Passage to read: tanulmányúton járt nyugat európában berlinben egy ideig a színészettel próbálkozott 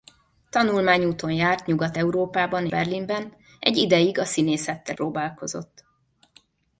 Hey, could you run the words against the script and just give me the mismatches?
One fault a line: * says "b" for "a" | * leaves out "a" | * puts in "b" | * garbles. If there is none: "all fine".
all fine